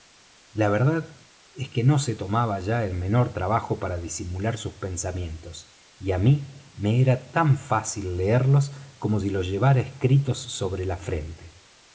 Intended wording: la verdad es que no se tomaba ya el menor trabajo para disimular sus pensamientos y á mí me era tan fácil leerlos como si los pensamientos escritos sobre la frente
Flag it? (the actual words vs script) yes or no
yes